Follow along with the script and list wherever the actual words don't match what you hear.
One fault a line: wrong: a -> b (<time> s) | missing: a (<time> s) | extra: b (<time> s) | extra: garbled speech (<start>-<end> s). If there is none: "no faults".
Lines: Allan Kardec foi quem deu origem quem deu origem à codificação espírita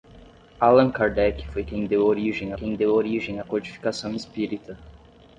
no faults